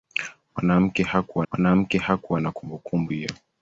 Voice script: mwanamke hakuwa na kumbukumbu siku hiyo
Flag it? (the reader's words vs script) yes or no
yes